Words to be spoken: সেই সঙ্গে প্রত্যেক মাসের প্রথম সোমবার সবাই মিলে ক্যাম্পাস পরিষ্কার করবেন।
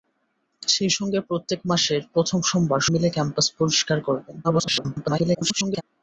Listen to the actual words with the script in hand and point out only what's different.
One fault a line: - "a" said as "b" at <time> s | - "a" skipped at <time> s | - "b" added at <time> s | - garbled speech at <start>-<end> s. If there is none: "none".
- "সবাই" skipped at 2.8 s
- garbled speech at 4.4-5.8 s